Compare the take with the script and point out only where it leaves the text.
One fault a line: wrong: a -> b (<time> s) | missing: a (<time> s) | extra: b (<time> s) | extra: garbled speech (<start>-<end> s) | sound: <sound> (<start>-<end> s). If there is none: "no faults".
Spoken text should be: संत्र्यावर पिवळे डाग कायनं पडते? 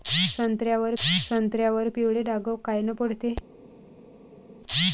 extra: संत्र्यावर (1.0 s)